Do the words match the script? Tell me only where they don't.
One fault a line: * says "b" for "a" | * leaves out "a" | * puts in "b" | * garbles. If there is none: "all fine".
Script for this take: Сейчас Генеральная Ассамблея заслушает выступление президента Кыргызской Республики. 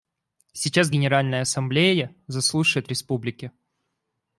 * leaves out "выступление президента Кыргызской"